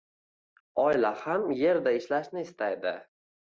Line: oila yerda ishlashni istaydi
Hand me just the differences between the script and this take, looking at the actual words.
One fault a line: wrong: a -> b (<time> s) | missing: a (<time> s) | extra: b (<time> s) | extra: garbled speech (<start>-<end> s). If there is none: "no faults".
extra: ham (1.2 s)